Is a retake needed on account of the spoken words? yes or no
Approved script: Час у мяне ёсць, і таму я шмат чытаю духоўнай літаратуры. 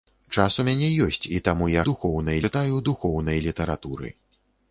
yes